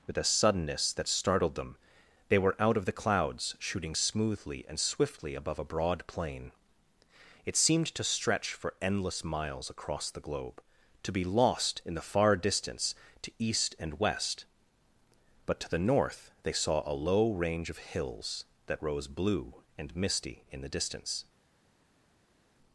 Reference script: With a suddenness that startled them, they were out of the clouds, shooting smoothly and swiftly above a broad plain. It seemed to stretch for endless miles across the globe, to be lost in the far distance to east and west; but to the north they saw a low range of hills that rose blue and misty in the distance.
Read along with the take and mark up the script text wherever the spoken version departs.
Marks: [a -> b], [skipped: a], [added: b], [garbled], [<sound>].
With a suddenness that startled them, they were out of the clouds, shooting smoothly and swiftly above a broad plain. It seemed to stretch for endless miles across the globe, to be lost in the far distance to east and west; but to the north they saw a low range of hills that rose blue and misty in the distance.